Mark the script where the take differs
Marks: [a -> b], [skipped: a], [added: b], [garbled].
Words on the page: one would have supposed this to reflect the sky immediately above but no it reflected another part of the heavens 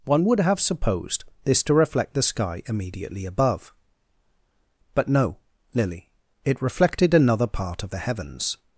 one would have supposed this to reflect the sky immediately above but no [added: lily] it reflected another part of the heavens